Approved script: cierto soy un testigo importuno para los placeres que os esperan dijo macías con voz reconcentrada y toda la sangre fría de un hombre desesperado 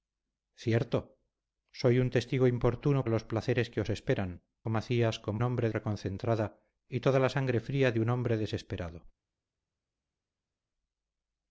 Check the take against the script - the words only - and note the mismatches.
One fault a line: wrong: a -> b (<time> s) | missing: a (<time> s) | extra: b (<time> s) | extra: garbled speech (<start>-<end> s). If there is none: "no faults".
missing: para (3.0 s)
missing: dijo (4.4 s)
wrong: voz -> hombre (5.4 s)